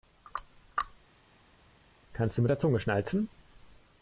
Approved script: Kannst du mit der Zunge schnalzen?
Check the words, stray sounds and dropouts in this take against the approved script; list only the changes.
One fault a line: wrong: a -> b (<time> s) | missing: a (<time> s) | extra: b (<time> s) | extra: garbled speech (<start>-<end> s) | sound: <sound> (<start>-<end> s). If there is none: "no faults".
no faults